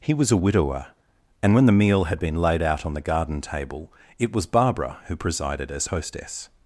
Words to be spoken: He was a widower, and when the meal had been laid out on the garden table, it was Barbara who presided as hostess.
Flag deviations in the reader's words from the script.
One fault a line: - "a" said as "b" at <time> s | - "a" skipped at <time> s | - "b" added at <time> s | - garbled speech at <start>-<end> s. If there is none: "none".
none